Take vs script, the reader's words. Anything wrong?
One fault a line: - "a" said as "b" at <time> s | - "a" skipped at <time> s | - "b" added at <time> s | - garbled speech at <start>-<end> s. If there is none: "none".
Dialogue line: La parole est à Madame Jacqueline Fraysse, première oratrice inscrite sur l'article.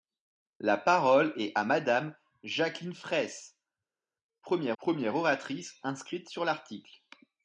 - "première" added at 4.8 s